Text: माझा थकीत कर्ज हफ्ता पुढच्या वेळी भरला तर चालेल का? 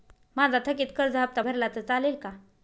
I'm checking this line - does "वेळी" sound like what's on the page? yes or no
no